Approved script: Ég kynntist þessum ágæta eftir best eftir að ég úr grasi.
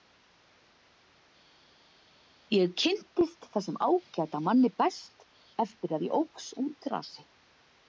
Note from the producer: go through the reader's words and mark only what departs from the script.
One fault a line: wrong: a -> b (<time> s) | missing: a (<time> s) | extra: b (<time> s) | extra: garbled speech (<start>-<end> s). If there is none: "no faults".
wrong: eftir -> manni (4.5 s)
extra: óx (6.2 s)